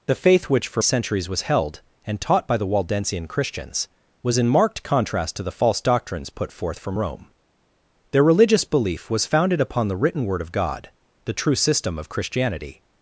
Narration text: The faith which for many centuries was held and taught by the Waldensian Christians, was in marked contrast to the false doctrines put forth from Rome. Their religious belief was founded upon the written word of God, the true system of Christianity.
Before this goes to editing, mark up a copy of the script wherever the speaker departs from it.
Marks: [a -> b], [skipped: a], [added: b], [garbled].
The faith which for [skipped: many] centuries was held and taught by the Waldensian Christians, was in marked contrast to the false doctrines put forth from Rome. Their religious belief was founded upon the written word of God, the true system of Christianity.